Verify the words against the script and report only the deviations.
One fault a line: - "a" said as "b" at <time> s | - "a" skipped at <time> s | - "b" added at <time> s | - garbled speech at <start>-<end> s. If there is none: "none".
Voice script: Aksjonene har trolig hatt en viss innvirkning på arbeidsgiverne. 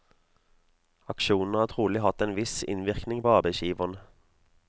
none